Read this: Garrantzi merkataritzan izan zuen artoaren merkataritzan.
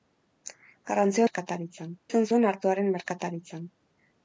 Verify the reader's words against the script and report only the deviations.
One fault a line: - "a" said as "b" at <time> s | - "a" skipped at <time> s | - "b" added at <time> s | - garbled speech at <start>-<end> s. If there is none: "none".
none